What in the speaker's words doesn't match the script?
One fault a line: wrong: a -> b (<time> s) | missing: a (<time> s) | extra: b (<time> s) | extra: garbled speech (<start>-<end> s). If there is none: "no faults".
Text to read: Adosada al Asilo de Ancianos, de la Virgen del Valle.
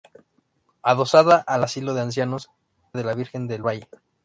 no faults